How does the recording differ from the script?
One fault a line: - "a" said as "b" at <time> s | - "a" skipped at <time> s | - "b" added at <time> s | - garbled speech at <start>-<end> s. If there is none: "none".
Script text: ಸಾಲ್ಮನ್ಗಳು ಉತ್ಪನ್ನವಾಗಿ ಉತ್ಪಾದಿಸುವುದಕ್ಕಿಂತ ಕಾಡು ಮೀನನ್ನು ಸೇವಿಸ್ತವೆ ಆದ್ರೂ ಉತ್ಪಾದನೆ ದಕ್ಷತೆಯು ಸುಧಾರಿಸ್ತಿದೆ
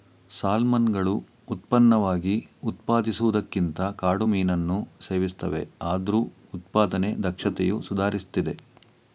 none